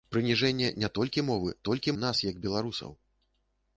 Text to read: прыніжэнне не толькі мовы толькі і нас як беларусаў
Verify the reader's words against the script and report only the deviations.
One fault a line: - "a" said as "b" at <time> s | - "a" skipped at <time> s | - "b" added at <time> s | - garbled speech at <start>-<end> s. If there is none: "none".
none